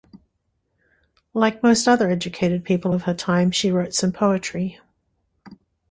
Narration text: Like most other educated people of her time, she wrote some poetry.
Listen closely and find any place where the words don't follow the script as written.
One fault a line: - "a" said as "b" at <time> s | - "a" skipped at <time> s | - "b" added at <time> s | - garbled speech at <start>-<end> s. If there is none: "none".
none